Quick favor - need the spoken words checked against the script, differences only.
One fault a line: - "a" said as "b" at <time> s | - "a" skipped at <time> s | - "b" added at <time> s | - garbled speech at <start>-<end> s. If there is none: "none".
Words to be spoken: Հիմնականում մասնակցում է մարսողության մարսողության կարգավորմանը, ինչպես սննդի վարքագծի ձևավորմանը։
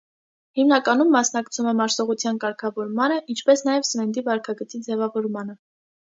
- "մարսողության" skipped at 2.4 s
- "նաև" added at 3.7 s